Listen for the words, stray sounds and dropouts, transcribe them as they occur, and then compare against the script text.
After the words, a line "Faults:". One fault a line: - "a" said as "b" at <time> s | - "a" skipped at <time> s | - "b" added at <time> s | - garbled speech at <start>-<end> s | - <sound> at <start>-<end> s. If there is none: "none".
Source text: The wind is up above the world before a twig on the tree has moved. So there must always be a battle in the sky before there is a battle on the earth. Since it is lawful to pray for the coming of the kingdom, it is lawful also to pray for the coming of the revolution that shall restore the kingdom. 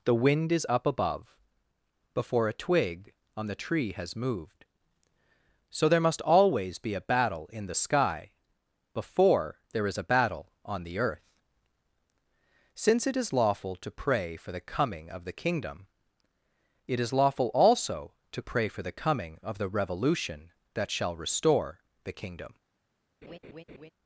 The wind is up above before a twig on the tree has moved. So there must always be a battle in the sky before there is a battle on the earth. Since it is lawful to pray for the coming of the kingdom, it is lawful also to pray for the coming of the revolution that shall restore the kingdom.
Faults:
- "the world" skipped at 1.4 s
- laugh at 23.2-23.9 s